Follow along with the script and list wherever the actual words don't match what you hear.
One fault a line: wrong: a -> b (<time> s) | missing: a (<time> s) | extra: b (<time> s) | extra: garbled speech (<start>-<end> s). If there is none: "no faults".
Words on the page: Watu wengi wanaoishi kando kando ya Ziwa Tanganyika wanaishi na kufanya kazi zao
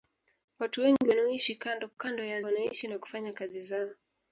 missing: Ziwa Tanganyika (2.4 s)